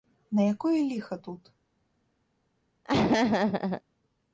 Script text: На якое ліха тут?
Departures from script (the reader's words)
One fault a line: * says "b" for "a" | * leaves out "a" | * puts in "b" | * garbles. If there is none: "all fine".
all fine